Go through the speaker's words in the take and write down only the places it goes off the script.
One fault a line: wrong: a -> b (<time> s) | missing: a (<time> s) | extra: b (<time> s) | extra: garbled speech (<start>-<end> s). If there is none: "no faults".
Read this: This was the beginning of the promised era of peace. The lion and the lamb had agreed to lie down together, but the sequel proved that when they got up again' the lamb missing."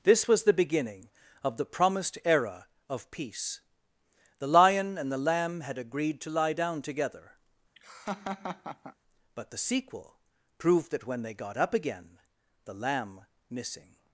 no faults